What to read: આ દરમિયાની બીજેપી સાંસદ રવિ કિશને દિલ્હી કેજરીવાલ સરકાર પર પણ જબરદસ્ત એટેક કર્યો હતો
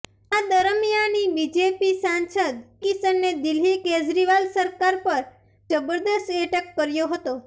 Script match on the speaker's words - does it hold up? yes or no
no